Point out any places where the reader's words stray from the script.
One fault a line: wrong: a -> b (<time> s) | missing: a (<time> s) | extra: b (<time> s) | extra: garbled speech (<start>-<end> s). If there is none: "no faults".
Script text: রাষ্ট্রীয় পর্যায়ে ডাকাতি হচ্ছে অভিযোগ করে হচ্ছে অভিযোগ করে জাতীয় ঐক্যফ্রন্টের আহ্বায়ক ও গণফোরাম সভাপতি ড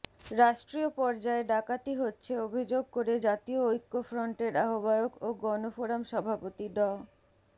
missing: হচ্ছে অভিযোগ করে (3.1 s)